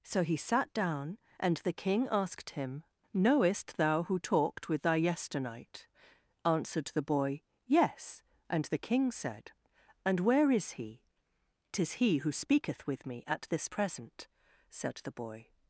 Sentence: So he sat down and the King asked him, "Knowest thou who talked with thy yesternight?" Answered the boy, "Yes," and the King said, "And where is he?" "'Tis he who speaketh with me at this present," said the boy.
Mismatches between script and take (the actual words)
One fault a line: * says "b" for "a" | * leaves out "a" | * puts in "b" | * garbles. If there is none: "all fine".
all fine